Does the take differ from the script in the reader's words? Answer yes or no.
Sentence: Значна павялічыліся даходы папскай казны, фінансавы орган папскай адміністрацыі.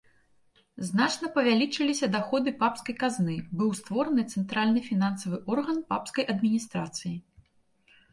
yes